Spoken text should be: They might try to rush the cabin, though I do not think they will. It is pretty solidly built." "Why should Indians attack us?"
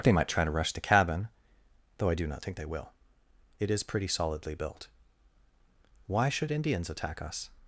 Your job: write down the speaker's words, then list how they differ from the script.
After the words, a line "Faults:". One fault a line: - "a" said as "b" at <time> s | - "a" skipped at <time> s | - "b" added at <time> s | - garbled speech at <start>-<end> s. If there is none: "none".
They might try to rush the cabin, though I do not think they will. It is pretty solidly built." "Why should Indians attack us?"
Faults:
none